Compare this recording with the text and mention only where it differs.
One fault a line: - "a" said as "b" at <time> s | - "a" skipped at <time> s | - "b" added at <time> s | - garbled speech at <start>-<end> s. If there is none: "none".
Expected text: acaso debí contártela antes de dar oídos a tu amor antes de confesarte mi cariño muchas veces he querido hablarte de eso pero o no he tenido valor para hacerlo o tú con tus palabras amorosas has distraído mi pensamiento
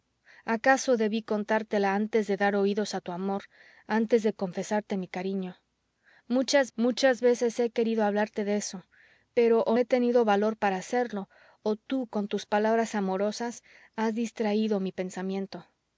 - "muchas" added at 6.7 s
- "no" skipped at 9.8 s